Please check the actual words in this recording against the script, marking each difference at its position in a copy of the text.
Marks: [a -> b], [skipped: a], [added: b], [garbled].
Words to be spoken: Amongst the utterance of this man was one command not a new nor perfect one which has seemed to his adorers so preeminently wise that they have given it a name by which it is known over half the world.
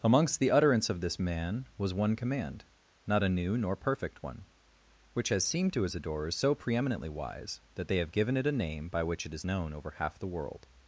Amongst the utterance of this man was one command not a new nor perfect one which has seemed to his adorers so preeminently wise that they have given it a name by which it is known over half the world.